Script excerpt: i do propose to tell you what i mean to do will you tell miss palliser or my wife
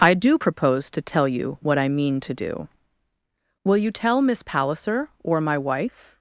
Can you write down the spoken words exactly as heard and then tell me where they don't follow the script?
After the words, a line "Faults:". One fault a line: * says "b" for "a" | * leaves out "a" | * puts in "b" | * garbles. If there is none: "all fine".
i do propose to tell you what i mean to do will you tell miss palliser or my wife
Faults:
all fine